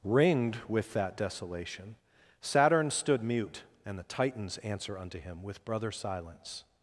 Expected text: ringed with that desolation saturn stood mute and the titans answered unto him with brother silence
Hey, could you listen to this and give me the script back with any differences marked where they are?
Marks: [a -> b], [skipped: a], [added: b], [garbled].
ringed with that desolation saturn stood mute and the titans [answered -> answer] unto him with brother silence